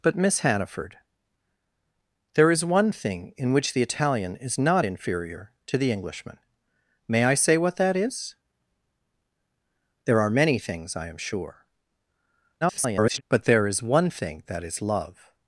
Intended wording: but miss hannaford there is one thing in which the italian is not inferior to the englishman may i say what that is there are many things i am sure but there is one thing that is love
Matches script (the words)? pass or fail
fail